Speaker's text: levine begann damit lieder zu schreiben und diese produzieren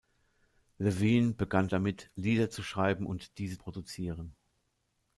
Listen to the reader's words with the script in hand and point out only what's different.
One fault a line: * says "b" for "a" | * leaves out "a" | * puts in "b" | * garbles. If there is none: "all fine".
all fine